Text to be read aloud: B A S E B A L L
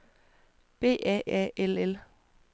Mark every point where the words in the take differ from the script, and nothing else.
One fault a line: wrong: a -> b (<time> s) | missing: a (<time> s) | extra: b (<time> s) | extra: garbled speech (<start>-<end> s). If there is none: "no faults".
missing: S E B (1.2 s)